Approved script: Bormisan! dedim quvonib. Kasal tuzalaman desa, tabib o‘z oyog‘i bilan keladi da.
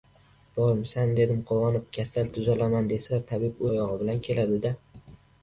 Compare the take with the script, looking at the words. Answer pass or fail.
fail